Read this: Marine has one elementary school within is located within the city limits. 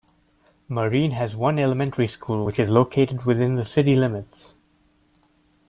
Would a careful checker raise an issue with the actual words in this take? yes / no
yes